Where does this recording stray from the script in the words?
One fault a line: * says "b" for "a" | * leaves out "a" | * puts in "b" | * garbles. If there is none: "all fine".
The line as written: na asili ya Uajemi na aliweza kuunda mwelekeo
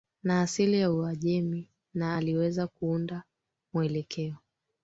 all fine